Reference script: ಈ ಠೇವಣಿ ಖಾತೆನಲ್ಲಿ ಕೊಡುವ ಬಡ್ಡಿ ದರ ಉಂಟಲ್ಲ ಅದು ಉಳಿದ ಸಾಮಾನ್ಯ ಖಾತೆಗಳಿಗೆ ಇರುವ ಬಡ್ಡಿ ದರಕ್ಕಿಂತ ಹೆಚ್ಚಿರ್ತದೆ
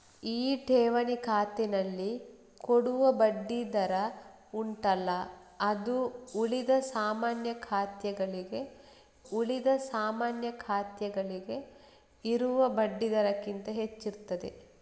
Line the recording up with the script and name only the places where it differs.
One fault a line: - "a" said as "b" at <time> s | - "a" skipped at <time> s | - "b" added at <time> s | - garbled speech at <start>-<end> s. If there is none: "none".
- "ಉಳಿದ ಸಾಮಾನ್ಯ ಖಾತೆಗಳಿಗೆ" added at 9.3 s